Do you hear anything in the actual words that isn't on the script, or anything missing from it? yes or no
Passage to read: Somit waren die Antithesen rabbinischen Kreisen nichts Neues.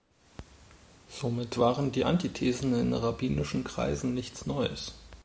yes